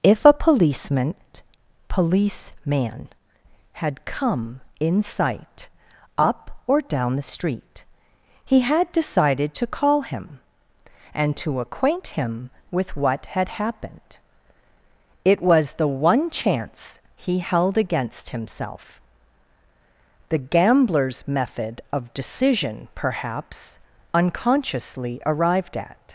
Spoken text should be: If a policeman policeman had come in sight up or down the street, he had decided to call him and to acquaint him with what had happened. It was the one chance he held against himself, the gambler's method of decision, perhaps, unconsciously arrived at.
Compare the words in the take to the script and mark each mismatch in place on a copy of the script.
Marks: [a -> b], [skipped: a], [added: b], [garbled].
If a policeman policeman had come in sight up or down the street, he had decided to call him and to acquaint him with what had happened. It was the one chance he held against himself, the gambler's method of decision, perhaps, unconsciously arrived at.